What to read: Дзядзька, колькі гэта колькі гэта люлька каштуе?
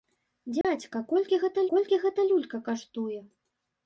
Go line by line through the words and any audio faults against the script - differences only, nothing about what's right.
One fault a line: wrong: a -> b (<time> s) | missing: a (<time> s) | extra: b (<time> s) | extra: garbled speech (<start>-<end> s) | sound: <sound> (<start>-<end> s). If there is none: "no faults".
sound: dropout (0.6-0.6 s)